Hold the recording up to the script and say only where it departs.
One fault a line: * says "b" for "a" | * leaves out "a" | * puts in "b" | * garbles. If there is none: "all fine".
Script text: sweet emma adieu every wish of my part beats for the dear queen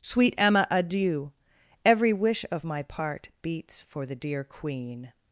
all fine